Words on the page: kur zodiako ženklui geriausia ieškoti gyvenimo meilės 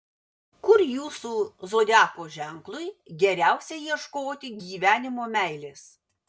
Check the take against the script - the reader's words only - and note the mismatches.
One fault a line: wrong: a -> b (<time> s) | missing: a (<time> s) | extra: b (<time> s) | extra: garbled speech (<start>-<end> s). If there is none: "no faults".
extra: jūsų (0.8 s)